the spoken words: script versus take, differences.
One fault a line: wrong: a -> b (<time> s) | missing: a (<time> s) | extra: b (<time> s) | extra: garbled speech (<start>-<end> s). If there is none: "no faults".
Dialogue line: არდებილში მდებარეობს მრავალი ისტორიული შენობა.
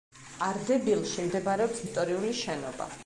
missing: მრავალი (1.8 s)